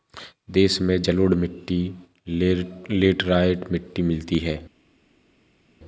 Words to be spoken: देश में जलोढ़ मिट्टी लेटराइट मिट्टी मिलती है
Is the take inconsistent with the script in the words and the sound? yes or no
no